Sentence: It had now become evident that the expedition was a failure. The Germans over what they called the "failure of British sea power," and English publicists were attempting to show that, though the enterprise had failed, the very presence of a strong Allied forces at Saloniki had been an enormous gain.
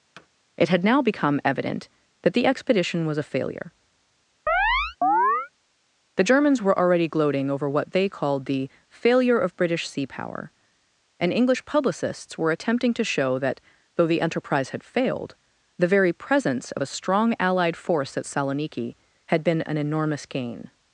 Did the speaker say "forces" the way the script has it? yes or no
no